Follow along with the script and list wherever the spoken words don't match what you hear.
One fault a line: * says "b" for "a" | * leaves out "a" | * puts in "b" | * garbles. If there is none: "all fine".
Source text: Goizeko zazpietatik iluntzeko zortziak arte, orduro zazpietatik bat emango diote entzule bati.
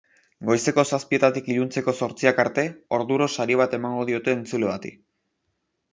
* says "sari" for "zazpietatik"